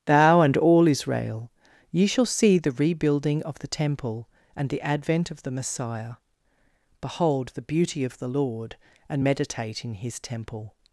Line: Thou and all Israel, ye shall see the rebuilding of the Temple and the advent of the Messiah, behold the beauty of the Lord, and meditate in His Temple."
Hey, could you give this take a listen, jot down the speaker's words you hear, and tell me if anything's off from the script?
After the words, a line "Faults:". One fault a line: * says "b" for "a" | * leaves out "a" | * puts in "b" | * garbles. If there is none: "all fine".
Thou and all Israel, ye shall see the rebuilding of the Temple and the advent of the Messiah, behold the beauty of the Lord, and meditate in His Temple."
Faults:
all fine